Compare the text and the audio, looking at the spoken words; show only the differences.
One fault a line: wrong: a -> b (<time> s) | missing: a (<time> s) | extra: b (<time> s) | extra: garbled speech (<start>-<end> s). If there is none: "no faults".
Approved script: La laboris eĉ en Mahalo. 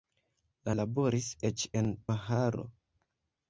no faults